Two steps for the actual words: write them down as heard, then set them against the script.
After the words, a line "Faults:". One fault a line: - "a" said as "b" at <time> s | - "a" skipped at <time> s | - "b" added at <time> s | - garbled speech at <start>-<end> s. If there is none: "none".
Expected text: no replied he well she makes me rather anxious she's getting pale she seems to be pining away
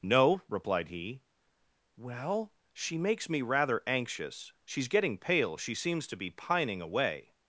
no replied he well she makes me rather anxious she's getting pale she seems to be pining away
Faults:
none